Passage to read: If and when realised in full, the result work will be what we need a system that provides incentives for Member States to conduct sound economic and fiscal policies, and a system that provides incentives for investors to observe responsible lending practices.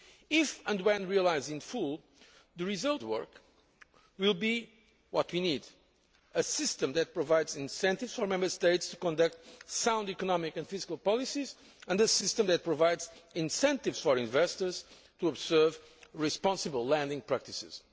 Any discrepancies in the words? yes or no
no